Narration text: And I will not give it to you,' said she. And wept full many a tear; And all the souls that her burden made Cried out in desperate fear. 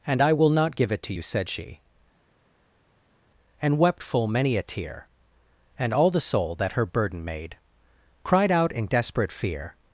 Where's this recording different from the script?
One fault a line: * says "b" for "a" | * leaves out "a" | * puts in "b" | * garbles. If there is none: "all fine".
* says "soul" for "souls"